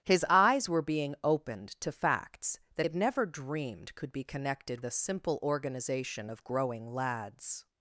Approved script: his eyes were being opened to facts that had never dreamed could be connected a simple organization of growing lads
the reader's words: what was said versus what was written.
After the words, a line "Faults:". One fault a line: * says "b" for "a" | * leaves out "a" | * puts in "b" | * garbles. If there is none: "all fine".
his eyes were being opened to facts that had never dreamed could be connected a simple organization of growing lads
Faults:
all fine